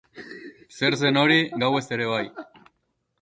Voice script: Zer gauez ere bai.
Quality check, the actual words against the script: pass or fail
fail